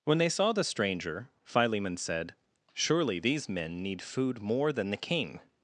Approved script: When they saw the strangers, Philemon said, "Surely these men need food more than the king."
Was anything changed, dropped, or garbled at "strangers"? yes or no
yes